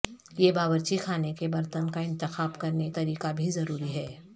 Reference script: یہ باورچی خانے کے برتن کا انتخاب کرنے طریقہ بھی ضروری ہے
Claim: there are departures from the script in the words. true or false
false